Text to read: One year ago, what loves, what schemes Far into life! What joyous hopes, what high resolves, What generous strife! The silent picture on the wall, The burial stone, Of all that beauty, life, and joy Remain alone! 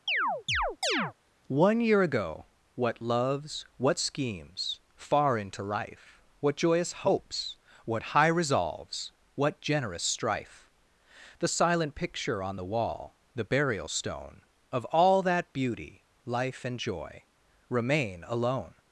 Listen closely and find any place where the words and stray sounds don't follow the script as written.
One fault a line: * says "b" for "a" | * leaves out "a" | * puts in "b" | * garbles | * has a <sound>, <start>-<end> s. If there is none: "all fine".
* has a chirp, 0.1-1.1 s